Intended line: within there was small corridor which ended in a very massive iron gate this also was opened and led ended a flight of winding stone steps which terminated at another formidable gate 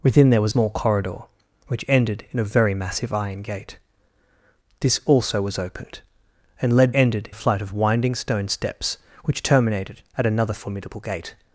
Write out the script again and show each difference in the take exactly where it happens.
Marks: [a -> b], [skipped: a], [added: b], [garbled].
within there was small corridor which ended in a very massive iron gate this also was opened and led ended a flight of winding stone steps which terminated at another formidable gate